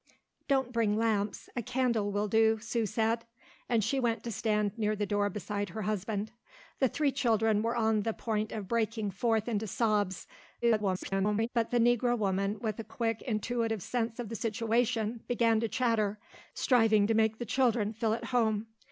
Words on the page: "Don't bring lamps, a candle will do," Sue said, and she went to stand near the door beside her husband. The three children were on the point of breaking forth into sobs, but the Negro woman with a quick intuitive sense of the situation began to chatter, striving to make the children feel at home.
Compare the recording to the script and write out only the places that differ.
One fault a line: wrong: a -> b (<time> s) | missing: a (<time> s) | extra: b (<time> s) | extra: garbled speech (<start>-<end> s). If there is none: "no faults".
extra: garbled speech (10.6-11.5 s)